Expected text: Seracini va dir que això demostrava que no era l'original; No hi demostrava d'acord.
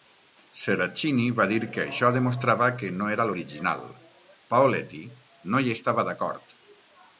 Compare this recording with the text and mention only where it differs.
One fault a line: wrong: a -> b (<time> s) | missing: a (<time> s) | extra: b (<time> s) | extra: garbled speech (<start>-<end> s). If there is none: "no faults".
extra: Paoletti (4.6 s)
wrong: demostrava -> estava (5.8 s)